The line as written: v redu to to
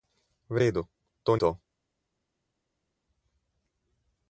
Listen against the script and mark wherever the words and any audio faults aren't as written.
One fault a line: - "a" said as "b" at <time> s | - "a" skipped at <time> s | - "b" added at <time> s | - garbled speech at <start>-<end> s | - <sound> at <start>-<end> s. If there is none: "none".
none